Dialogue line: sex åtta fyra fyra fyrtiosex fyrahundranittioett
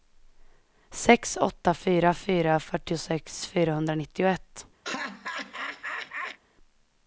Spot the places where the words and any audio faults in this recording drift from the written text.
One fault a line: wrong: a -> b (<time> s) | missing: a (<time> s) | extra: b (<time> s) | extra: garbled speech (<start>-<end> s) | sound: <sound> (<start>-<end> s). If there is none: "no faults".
sound: laugh (4.8-6.4 s)